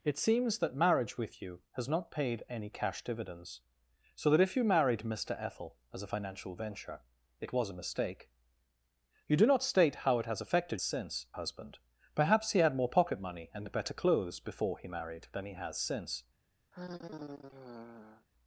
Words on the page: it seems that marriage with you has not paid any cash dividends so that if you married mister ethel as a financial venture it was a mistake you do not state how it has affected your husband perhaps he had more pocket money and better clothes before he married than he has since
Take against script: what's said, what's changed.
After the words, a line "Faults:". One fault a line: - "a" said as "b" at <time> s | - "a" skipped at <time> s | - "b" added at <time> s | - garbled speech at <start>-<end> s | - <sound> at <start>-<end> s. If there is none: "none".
it seems that marriage with you has not paid any cash dividends so that if you married mister ethel as a financial venture it was a mistake you do not state how it has affected since husband perhaps he had more pocket money and better clothes before he married than he has since
Faults:
- "your" said as "since" at 10.8 s
- sigh at 16.7-18.3 s